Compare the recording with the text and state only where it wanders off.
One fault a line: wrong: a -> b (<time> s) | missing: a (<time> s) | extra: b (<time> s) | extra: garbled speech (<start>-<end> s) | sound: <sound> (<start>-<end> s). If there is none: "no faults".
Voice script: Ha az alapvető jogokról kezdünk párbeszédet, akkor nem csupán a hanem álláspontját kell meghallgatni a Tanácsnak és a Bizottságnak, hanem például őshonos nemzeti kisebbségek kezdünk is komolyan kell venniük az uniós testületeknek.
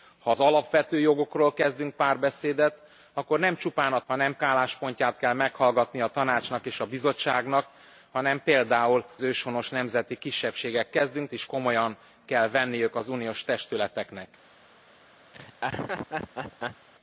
sound: laugh (15.3-16.9 s)